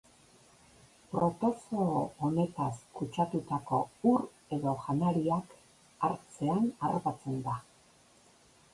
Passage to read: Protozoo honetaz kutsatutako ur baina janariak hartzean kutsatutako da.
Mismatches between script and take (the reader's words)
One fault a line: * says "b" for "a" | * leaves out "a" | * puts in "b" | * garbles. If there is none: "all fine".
* says "edo" for "baina"
* says "harrapatzen" for "kutsatutako"